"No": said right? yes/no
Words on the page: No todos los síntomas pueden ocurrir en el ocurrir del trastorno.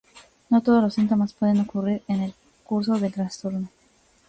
yes